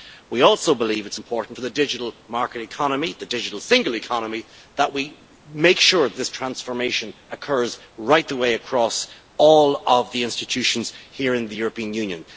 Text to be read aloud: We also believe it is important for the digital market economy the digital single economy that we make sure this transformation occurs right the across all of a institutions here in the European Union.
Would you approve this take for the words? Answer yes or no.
no